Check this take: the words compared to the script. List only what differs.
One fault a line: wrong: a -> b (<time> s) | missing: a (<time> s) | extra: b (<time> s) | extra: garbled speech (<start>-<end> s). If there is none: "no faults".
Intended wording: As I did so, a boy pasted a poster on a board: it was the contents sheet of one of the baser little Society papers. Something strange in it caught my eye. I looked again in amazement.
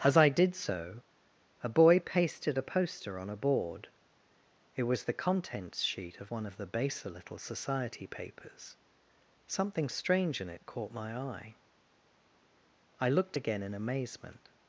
no faults